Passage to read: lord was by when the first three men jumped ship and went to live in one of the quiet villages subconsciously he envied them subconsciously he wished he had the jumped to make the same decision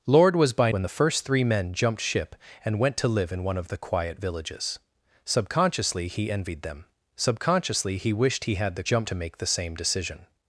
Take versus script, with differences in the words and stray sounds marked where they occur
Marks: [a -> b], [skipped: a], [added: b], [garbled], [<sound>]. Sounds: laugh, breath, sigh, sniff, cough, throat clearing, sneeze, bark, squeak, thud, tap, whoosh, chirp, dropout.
lord was by when the first three men jumped ship and went to live in one of the quiet villages subconsciously he envied them subconsciously he wished he had the jumped to make the same decision